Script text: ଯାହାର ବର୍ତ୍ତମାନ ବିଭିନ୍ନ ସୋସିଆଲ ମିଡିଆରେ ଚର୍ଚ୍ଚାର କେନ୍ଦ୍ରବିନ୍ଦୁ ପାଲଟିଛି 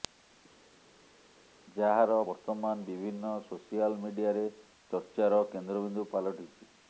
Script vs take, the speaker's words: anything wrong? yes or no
no